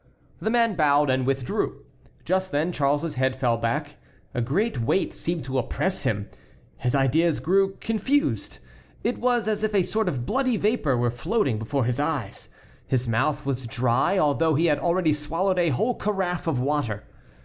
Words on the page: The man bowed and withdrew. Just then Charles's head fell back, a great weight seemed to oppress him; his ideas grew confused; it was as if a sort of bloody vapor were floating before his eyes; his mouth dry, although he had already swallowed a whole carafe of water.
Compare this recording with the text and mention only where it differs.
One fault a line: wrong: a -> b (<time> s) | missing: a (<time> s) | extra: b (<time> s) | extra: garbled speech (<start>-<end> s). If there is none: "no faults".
extra: was (13.5 s)